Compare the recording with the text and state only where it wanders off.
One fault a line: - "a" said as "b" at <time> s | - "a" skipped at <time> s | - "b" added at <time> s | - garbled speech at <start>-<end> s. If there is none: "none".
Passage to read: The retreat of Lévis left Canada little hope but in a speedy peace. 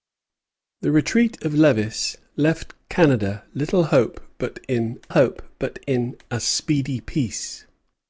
- "hope but in" added at 5.1 s